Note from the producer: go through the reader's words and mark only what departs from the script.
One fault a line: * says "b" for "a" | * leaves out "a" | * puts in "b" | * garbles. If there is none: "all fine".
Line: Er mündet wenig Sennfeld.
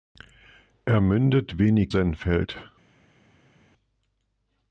all fine